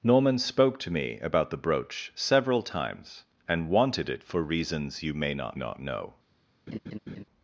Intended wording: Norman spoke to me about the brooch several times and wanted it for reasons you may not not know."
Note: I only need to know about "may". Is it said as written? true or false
true